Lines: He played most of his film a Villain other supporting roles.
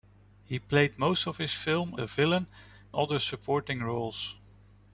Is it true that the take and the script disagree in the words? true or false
false